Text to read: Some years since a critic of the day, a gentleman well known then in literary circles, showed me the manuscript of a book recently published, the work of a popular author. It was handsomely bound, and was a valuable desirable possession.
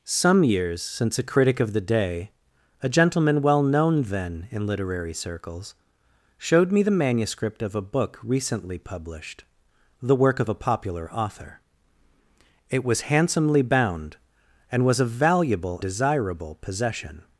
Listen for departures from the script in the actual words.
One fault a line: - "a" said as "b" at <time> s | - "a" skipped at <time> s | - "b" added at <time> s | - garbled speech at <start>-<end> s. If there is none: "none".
none